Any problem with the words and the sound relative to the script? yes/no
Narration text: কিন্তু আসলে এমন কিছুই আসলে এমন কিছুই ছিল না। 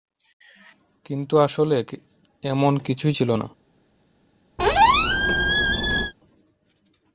yes